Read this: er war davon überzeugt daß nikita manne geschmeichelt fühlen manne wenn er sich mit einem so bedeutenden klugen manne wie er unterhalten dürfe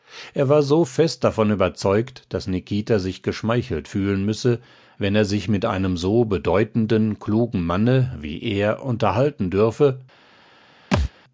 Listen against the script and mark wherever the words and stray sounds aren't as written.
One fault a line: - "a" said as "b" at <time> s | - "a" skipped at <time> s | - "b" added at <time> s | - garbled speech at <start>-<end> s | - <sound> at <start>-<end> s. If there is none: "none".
- "so fest" added at 0.6 s
- "manne" said as "sich" at 3.0 s
- "manne" said as "müsse" at 4.2 s
- thud at 10.9-11.1 s